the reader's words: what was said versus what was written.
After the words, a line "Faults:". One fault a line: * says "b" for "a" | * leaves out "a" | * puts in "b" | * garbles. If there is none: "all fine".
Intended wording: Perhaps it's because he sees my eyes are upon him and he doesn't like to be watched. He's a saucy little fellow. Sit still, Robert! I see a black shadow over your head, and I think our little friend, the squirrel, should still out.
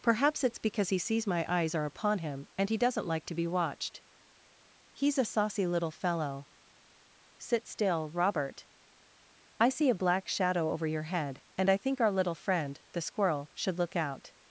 Perhaps it's because he sees my eyes are upon him and he doesn't like to be watched. He's a saucy little fellow. Sit still, Robert! I see a black shadow over your head, and I think our little friend, the squirrel, should look out.
Faults:
* says "look" for "still"